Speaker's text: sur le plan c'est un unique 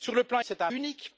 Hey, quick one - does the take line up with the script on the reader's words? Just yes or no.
yes